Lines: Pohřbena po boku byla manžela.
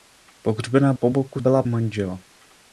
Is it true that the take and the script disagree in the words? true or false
false